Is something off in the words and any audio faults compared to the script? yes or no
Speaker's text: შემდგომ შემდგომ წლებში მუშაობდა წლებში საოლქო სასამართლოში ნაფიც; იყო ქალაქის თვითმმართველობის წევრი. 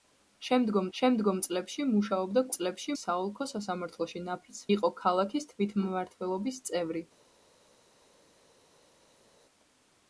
no